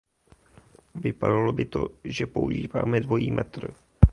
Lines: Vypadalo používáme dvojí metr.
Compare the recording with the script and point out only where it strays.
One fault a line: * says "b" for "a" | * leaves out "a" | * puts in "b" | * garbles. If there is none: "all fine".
* puts in "by to že"